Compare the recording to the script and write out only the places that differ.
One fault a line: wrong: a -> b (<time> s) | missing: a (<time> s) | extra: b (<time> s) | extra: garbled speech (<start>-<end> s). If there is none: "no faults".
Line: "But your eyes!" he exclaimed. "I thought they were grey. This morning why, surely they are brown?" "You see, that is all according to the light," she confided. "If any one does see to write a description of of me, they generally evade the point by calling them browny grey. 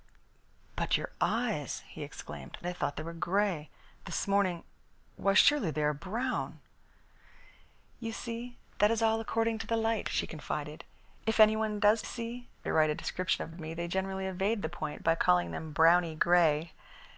no faults